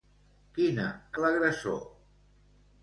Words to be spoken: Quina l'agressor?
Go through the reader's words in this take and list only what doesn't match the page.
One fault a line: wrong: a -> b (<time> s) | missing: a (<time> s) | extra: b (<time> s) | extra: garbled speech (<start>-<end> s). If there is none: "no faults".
no faults